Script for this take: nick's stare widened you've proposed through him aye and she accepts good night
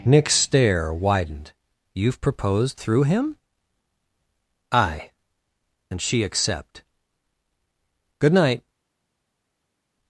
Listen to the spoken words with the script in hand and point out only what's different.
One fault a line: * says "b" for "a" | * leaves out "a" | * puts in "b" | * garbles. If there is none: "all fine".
* says "accept" for "accepts"